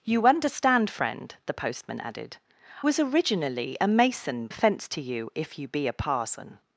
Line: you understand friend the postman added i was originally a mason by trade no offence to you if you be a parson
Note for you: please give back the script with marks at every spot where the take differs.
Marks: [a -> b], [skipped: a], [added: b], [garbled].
you understand friend the postman added [skipped: i] was originally a mason [skipped: by trade no] offence to you if you be a parson